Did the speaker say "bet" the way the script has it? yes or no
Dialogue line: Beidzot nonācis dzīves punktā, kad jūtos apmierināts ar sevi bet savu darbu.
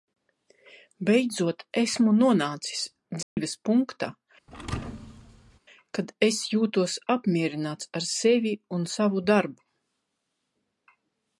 no